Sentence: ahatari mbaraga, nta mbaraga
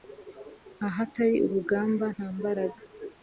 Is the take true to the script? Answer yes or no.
no